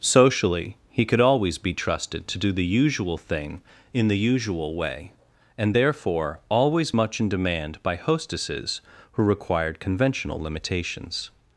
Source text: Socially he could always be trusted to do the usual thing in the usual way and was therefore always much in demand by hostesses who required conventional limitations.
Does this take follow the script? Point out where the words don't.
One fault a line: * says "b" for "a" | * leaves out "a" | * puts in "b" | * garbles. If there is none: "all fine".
* leaves out "was"